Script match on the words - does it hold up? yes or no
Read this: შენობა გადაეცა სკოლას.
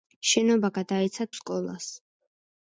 yes